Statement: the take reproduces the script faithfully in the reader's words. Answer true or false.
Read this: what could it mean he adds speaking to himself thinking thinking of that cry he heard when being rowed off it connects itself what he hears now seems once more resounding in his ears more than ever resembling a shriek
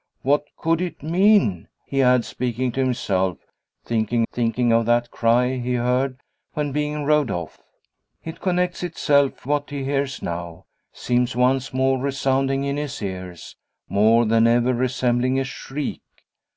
true